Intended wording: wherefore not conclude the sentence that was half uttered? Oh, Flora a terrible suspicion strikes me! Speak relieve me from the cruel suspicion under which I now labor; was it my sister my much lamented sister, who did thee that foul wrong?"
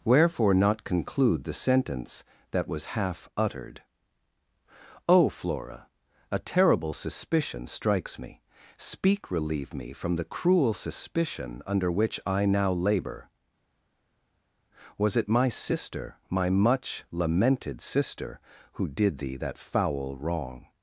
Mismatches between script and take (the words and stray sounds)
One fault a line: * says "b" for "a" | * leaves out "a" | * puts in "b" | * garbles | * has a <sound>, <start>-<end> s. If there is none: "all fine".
all fine